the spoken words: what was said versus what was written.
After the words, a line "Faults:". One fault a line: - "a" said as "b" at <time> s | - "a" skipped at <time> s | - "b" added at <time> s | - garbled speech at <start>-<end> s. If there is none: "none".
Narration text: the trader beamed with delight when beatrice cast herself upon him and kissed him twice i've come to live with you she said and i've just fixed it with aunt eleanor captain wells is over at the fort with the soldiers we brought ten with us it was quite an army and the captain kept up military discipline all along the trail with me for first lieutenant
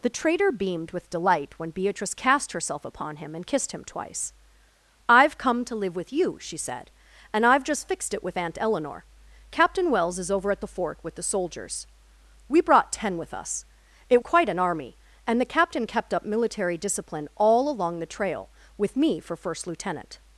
the trader beamed with delight when beatrice cast herself upon him and kissed him twice i've come to live with you she said and i've just fixed it with aunt eleanor captain wells is over at the fort with the soldiers we brought ten with us it quite an army and the captain kept up military discipline all along the trail with me for first lieutenant
Faults:
- "was" skipped at 14.2 s